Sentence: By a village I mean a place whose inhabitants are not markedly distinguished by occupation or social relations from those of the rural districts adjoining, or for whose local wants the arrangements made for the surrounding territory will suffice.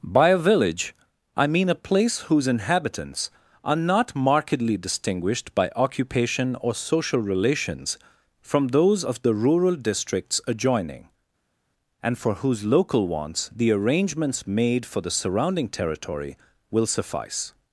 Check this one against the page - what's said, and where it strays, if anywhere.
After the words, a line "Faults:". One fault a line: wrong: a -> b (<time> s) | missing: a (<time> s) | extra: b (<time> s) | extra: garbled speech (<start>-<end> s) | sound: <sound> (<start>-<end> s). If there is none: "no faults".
By a village I mean a place whose inhabitants are not markedly distinguished by occupation or social relations from those of the rural districts adjoining, and for whose local wants the arrangements made for the surrounding territory will suffice.
Faults:
wrong: or -> and (12.0 s)